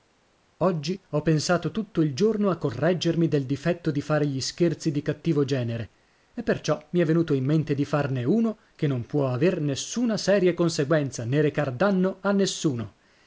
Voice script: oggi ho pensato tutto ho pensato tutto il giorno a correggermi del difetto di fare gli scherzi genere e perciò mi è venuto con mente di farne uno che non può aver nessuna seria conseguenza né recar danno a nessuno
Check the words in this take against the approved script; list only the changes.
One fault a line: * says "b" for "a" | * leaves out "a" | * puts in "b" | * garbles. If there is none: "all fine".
* leaves out "ho pensato tutto"
* puts in "di cattivo"
* says "in" for "con"